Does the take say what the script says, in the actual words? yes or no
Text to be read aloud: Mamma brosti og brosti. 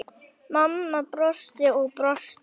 yes